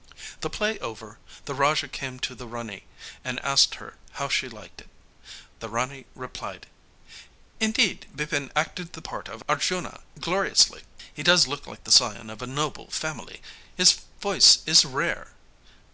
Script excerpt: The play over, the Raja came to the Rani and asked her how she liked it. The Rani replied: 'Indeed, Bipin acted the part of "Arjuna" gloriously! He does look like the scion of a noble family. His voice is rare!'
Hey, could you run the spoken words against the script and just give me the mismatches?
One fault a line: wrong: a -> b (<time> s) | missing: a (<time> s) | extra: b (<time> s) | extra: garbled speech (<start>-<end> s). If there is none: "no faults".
no faults